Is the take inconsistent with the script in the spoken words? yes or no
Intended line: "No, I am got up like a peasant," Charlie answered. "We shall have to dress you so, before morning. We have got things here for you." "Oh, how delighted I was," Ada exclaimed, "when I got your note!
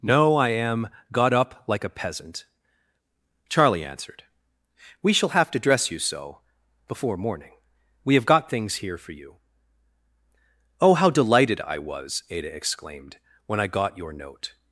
no